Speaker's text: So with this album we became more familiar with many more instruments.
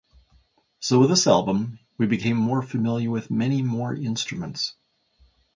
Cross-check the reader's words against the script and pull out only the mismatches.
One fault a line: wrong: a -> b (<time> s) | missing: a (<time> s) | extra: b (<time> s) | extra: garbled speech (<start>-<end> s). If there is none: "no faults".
no faults